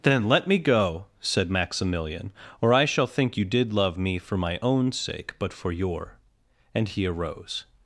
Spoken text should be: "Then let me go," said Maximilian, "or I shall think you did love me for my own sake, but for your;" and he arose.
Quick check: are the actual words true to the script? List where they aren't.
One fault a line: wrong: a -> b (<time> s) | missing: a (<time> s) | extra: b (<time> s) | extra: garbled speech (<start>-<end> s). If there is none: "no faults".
no faults